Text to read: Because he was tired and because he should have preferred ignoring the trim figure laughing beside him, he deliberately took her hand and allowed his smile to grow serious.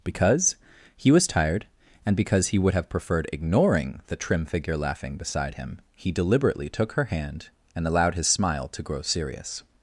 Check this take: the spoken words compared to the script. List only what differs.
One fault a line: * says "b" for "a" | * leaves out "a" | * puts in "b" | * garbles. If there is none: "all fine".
* says "would" for "should"